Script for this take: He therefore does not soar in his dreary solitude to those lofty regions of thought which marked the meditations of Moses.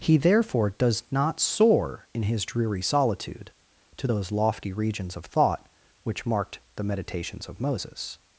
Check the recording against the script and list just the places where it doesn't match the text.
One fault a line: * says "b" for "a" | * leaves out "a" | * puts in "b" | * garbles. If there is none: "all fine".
all fine